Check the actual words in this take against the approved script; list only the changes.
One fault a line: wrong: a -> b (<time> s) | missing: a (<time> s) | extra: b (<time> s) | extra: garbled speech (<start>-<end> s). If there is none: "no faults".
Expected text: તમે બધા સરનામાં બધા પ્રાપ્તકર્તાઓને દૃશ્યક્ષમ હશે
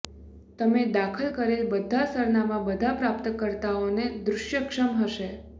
extra: દાખલ કરેલ (0.9 s)